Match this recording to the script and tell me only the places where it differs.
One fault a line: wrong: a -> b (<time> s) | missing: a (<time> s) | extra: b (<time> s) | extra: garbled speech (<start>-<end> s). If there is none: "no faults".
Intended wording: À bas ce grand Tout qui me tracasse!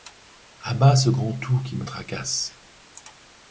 no faults